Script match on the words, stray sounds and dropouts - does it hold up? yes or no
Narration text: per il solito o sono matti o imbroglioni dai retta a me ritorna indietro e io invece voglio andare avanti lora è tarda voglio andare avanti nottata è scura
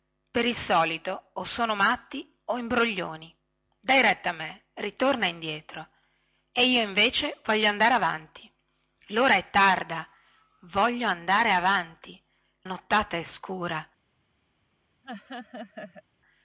no